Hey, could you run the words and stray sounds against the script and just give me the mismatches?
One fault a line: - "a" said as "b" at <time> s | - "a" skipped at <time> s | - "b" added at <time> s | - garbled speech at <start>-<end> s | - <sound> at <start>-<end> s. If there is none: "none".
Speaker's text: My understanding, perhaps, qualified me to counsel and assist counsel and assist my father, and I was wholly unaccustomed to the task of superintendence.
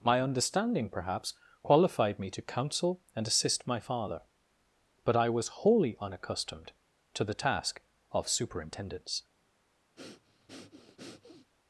- "counsel and assist" skipped at 3.7 s
- "and" said as "but" at 5.0 s
- breath at 10.0-11.5 s